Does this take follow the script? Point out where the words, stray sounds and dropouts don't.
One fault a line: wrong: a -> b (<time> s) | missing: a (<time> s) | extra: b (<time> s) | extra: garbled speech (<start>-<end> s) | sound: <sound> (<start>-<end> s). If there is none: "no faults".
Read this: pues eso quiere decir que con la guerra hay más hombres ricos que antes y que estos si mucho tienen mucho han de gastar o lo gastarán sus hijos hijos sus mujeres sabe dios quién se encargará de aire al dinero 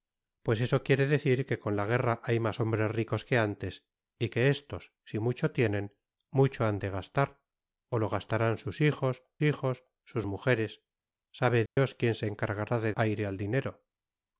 sound: dropout (11.7-11.8 s)